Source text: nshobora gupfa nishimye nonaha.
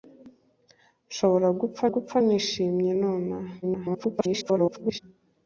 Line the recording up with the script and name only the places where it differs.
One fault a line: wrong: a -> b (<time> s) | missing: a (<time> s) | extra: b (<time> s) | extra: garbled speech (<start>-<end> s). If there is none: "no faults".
extra: gupfa (1.9 s)
extra: garbled speech (3.6-5.0 s)